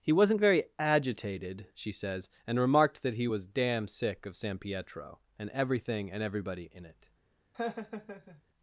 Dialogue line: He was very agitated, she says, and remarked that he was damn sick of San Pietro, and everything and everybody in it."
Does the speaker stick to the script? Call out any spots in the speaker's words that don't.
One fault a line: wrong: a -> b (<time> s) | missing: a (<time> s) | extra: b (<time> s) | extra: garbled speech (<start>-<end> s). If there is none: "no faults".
wrong: was -> wasn't (0.1 s)